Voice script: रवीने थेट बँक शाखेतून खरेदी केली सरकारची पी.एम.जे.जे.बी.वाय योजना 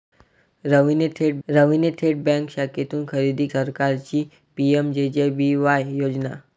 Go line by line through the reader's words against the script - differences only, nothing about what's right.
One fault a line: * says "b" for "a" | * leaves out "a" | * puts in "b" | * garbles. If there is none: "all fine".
* puts in "रवीने थेट"
* leaves out "केली"